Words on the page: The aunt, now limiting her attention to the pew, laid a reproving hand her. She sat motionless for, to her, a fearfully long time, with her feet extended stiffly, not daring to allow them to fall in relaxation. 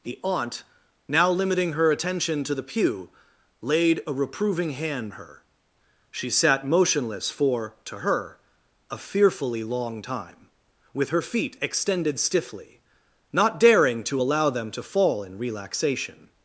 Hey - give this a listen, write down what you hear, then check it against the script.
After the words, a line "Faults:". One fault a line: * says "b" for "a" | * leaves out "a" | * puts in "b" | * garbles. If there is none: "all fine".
The aunt, now limiting her attention to the pew, laid a reproving hand her. She sat motionless for, to her, a fearfully long time, with her feet extended stiffly, not daring to allow them to fall in relaxation.
Faults:
all fine